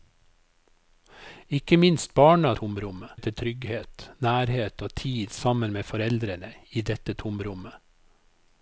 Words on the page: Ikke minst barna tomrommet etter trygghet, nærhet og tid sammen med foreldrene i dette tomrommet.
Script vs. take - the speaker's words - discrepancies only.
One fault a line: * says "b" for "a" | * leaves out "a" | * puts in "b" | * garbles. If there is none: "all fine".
all fine